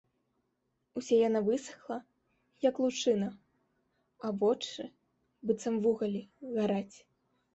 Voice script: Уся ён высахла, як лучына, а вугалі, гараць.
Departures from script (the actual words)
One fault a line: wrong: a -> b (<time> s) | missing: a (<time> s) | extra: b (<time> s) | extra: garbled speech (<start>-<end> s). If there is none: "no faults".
wrong: ён -> яна (1.3 s)
extra: вочы быццам (4.4 s)